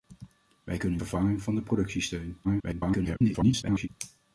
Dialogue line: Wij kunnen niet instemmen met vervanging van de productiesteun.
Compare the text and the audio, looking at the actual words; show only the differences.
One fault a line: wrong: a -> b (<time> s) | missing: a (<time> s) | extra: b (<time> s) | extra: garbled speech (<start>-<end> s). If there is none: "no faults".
missing: niet instemmen met (1.0 s)
extra: garbled speech (2.4-3.9 s)